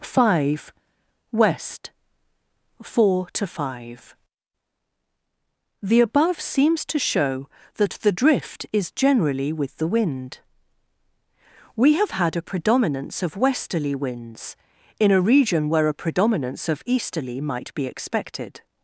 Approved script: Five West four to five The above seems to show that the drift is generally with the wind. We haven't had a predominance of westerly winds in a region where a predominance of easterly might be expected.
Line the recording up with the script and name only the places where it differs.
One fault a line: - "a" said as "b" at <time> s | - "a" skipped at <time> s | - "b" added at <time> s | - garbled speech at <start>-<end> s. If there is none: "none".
- "haven't" said as "have" at 11.9 s